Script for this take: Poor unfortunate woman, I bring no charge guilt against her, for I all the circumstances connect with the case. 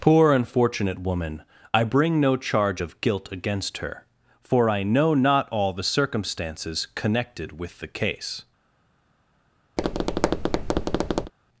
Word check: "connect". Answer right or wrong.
wrong